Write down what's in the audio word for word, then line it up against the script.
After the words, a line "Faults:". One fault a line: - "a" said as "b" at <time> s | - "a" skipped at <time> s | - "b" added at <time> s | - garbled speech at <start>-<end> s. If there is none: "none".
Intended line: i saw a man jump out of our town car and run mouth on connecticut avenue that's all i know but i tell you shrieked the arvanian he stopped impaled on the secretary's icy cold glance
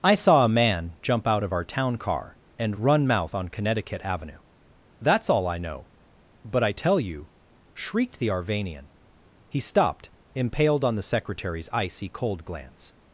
i saw a man jump out of our town car and run mouth on connecticut avenue that's all i know but i tell you shrieked the arvanian he stopped impaled on the secretary's icy cold glance
Faults:
none